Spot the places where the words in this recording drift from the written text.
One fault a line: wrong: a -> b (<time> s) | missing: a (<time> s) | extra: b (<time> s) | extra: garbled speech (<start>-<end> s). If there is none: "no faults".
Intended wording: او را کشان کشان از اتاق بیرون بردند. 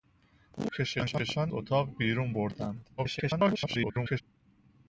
missing: را (0.7 s)
missing: از (1.5 s)
extra: garbled speech (3.0-4.2 s)